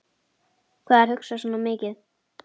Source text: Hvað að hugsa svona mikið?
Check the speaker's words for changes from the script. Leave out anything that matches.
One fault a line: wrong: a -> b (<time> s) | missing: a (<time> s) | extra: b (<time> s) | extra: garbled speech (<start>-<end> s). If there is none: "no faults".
no faults